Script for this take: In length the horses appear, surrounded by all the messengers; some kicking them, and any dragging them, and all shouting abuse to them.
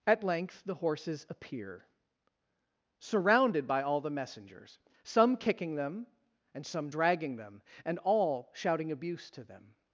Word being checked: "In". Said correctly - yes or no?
no